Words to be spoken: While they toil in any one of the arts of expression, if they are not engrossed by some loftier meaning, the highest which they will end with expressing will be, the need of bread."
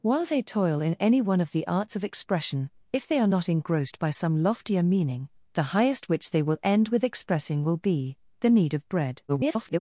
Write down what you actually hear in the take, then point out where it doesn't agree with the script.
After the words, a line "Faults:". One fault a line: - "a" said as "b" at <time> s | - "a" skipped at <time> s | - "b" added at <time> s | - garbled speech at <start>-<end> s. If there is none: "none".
While they toil in any one of the arts of expression, if they are not engrossed by some loftier meaning, the highest which they will end with expressing will be, the need of bread." [garbled]
Faults:
- garbled speech at 9.3-9.8 s